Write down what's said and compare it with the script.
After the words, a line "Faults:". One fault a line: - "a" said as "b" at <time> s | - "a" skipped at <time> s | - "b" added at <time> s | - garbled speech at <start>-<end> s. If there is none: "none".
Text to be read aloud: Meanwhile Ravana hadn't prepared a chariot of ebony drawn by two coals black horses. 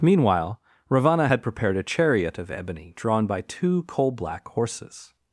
Meanwhile Ravana had prepared a chariot of ebony drawn by two coal black horses.
Faults:
- "hadn't" said as "had" at 1.3 s
- "coals" said as "coal" at 3.8 s